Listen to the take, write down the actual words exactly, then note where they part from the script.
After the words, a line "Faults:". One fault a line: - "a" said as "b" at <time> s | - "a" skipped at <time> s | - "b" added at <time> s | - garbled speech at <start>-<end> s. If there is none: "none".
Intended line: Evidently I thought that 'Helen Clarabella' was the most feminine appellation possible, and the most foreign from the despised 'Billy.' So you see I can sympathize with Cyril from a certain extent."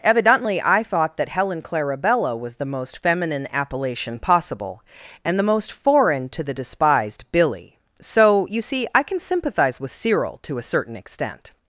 Evidently I thought that 'Helen Clarabella' was the most feminine appellation possible, and the most foreign to the despised 'Billy.' So you see I can sympathize with Cyril to a certain extent."
Faults:
- "from" said as "to" at 6.3 s
- "from" said as "to" at 10.4 s